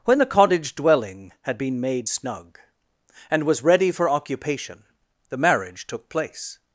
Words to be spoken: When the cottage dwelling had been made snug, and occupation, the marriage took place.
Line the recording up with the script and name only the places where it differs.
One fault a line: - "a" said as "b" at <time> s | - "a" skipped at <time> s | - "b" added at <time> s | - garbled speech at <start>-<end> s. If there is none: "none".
- "was ready for" added at 3.4 s